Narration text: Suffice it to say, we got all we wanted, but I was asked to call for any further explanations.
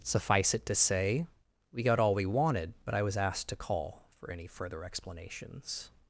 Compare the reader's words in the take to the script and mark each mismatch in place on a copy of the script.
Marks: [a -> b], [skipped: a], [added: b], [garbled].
Suffice it to say, we got all we wanted, but I was asked to call for any further explanations.